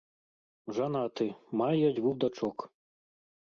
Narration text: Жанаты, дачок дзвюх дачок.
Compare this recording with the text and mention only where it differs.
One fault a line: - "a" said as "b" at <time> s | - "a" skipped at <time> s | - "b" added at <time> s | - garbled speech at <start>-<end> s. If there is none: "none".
- "дачок" said as "мае" at 1.6 s